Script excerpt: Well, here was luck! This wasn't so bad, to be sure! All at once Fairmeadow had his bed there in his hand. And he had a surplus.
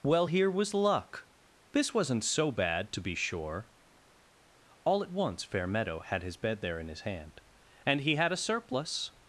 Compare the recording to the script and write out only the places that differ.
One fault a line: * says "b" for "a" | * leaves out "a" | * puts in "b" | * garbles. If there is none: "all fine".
all fine